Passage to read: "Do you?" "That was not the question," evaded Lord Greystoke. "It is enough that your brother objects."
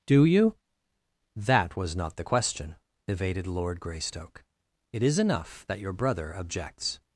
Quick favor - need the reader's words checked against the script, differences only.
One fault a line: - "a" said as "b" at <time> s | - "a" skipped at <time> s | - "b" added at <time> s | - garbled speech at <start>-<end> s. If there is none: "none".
none